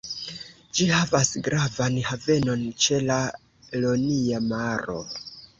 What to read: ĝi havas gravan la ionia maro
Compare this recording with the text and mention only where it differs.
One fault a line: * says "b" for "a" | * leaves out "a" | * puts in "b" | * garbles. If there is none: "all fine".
* puts in "havenon ĉe"